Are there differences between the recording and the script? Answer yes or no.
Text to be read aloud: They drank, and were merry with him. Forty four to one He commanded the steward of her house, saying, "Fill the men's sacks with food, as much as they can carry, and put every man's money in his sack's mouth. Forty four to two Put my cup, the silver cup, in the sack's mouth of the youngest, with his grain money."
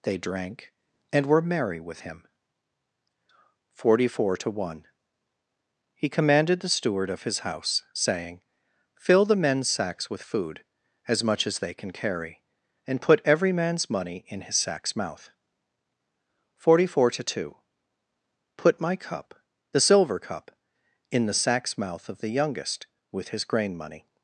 yes